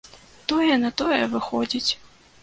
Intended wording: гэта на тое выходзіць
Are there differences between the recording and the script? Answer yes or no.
yes